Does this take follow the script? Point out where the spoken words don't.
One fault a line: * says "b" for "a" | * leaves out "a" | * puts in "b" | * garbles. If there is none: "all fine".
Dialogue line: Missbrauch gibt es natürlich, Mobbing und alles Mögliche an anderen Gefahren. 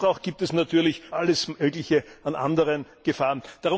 * leaves out "Mobbing und"